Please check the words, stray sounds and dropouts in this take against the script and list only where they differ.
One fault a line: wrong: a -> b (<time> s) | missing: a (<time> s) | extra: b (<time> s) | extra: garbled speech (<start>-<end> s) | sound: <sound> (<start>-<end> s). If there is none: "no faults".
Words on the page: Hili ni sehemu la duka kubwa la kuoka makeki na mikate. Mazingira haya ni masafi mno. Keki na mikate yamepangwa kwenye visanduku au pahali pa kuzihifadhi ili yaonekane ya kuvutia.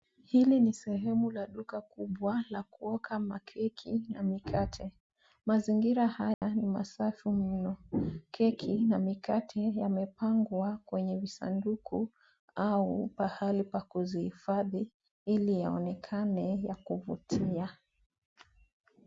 sound: dropout (6.3-6.4 s)